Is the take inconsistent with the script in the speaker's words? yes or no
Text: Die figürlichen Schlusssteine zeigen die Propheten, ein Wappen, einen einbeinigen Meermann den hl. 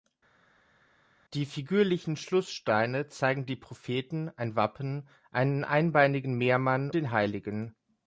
no